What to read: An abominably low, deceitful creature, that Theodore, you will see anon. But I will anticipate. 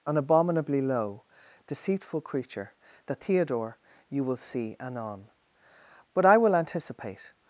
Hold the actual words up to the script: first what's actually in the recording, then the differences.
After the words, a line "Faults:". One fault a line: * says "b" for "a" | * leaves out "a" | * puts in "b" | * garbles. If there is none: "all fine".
An abominably low, deceitful creature, that Theodore, you will see anon. But I will anticipate.
Faults:
all fine